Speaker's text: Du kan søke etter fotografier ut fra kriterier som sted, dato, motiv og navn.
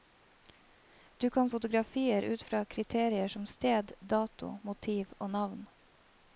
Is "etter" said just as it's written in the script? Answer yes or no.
no